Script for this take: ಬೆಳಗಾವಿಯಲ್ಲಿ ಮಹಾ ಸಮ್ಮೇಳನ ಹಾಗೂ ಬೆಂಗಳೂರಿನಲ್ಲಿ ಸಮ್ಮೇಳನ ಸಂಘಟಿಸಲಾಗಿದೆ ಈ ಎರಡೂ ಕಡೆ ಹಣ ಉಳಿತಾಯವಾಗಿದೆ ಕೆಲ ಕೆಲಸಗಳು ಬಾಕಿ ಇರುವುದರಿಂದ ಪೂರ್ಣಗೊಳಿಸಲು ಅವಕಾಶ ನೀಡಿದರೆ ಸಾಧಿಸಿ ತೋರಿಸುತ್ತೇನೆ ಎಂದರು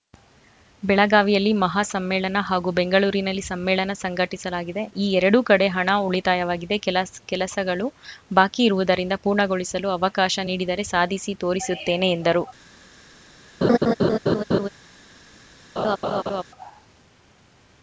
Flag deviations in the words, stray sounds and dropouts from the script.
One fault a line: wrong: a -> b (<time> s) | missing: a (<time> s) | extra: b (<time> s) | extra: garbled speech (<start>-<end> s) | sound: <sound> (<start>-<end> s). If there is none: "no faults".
sound: laugh (13.6-14.7 s)
sound: laugh (15.8-16.4 s)